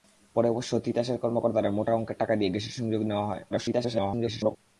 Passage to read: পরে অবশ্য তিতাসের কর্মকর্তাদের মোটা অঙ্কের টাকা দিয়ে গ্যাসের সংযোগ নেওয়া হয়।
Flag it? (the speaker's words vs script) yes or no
yes